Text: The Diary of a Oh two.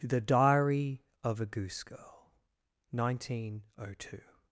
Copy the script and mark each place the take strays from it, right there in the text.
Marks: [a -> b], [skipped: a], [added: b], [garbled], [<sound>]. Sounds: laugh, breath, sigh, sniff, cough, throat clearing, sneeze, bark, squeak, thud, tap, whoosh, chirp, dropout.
The Diary of a [added: Goose Girl nineteen] Oh two.